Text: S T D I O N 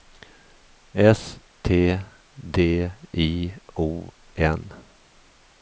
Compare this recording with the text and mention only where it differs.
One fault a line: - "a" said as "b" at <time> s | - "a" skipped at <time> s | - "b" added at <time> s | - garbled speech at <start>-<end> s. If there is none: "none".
none